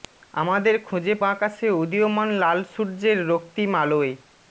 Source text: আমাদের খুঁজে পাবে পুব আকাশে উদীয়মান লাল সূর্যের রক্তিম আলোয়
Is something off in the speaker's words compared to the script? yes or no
yes